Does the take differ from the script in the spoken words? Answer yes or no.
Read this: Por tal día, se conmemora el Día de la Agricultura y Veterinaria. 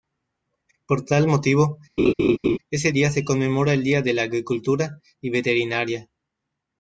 yes